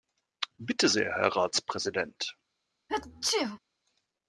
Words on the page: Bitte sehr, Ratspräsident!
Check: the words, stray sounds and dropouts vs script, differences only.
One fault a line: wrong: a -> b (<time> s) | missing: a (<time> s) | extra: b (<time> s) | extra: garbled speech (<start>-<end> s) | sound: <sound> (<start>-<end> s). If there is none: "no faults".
extra: Herr (1.1 s)
sound: sneeze (2.9-3.6 s)